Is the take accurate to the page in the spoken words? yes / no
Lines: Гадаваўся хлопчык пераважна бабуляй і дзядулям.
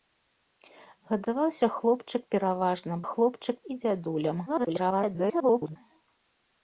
no